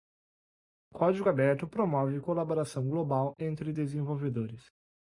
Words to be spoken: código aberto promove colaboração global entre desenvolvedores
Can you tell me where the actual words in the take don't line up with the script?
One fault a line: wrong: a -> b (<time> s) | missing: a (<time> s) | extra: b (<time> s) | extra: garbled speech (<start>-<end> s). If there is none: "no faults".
no faults